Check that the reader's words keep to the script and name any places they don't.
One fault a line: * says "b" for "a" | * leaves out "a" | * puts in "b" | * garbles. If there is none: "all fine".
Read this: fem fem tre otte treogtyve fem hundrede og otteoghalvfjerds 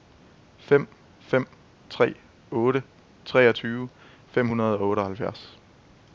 all fine